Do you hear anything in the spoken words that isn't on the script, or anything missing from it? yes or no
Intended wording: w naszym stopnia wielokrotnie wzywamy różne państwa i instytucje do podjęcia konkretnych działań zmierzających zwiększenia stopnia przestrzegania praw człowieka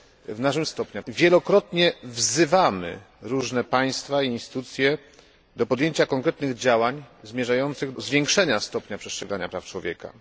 no